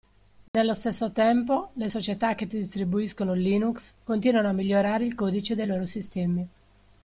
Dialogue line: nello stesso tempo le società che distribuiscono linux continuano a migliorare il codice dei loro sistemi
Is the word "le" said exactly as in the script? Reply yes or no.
yes